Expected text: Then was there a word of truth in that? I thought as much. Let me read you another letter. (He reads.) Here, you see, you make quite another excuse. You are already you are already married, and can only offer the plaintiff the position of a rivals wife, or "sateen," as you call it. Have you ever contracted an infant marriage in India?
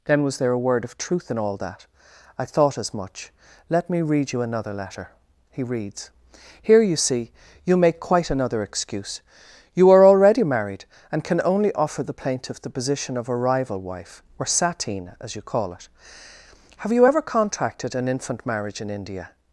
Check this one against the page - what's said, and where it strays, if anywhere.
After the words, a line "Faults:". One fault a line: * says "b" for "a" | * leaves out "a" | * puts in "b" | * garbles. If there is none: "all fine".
Then was there a word of truth in all that? I thought as much. Let me read you another letter. (He reads.) Here, you see, you make quite another excuse. You are already married, and can only offer the plaintiff the position of a rival wife, or "sateen," as you call it. Have you ever contracted an infant marriage in India?
Faults:
* puts in "all"
* leaves out "you are already"
* says "rival" for "rivals"